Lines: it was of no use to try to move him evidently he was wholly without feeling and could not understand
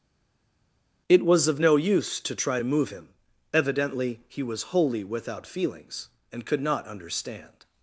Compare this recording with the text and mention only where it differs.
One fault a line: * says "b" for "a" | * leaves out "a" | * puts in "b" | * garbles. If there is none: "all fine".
* says "feelings" for "feeling"